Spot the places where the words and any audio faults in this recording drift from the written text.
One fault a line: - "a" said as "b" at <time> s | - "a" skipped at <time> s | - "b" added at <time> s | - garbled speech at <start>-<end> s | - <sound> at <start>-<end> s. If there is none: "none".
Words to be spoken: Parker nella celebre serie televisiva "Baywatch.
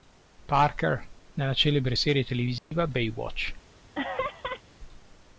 - dropout at 2.6-2.7 s
- laugh at 3.9-4.6 s